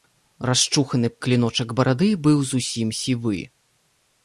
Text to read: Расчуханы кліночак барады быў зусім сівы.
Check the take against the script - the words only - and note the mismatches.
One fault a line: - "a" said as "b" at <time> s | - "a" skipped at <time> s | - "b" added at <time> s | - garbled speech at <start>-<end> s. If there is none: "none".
none